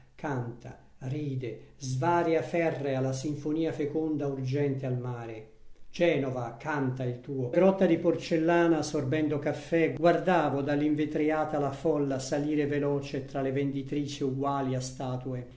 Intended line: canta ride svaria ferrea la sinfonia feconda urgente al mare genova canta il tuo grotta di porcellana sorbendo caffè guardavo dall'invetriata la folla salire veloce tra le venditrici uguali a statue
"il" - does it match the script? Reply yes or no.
yes